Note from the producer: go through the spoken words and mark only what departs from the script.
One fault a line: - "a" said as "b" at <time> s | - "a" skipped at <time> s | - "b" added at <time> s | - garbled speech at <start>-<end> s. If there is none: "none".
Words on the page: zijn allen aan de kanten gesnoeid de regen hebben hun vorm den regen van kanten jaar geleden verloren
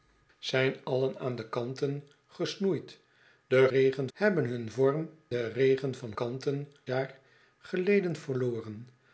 none